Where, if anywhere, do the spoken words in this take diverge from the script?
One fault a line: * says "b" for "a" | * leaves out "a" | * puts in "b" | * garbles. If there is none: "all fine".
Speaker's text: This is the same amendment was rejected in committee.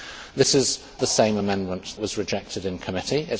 all fine